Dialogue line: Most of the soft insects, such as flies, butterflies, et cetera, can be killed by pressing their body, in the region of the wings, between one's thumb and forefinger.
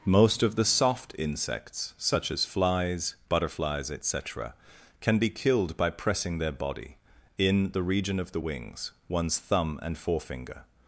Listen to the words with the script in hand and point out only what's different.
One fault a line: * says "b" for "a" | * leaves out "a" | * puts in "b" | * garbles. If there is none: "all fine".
* leaves out "between"